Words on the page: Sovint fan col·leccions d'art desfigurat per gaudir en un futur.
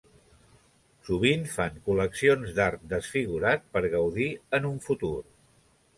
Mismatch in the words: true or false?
false